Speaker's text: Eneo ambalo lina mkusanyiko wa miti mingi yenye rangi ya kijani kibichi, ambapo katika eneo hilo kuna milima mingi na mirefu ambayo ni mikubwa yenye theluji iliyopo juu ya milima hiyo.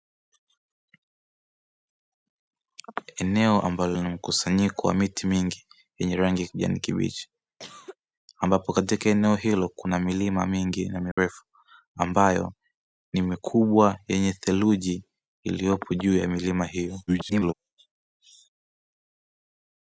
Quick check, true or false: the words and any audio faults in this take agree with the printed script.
false